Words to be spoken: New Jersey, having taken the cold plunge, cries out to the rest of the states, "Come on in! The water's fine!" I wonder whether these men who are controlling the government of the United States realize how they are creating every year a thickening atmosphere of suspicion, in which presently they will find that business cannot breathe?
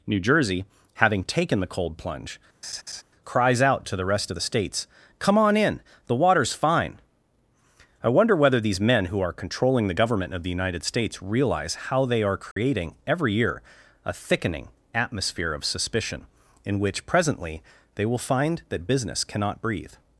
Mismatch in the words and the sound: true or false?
true